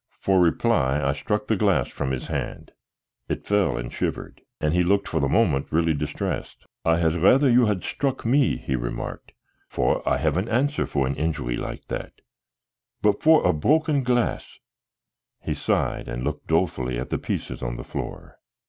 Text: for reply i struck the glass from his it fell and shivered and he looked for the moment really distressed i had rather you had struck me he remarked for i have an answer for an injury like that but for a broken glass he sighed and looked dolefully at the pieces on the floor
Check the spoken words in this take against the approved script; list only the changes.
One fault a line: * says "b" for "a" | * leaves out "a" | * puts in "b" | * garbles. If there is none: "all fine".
* puts in "hand"